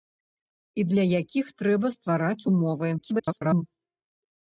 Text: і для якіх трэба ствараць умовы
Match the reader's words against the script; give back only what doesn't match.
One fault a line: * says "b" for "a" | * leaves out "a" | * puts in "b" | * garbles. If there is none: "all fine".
* garbles